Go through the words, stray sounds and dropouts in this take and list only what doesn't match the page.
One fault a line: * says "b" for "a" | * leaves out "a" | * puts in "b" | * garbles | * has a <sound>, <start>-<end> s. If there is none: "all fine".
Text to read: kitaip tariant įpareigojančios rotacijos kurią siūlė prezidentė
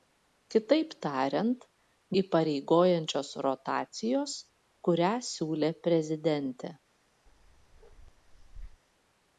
* has a bark, 7.3-8.8 s